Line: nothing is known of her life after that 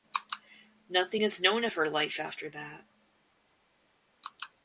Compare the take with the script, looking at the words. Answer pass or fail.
pass